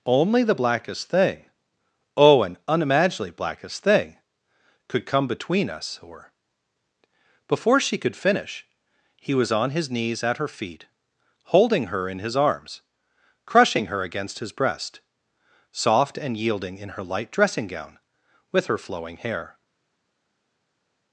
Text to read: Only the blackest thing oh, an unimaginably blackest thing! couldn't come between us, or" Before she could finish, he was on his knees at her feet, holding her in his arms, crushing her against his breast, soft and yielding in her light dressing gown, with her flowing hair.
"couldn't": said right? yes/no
no